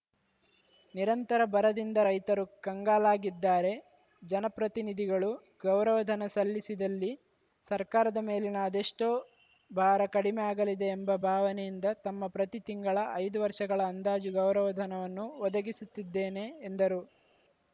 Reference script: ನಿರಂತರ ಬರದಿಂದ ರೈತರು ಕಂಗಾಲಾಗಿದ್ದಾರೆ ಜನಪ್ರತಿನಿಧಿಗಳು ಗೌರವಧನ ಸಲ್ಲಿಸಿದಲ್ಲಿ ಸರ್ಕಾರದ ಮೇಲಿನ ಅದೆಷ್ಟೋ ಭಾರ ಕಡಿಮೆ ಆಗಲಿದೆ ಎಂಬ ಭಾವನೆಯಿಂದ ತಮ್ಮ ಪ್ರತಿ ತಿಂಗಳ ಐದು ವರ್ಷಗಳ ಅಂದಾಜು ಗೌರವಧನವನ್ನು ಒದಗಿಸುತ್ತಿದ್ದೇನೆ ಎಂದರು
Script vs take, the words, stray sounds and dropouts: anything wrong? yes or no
no